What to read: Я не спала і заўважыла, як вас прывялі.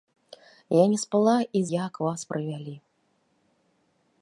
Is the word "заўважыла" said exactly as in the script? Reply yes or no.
no